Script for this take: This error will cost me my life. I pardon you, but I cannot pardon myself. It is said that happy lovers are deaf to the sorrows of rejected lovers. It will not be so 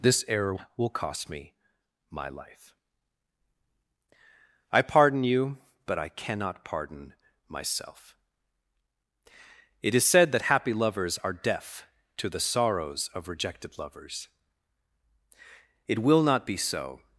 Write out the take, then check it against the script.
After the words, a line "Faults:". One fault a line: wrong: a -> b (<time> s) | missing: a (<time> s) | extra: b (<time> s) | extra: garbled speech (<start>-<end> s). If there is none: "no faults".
This error will cost me my life. I pardon you, but I cannot pardon myself. It is said that happy lovers are deaf to the sorrows of rejected lovers. It will not be so
Faults:
no faults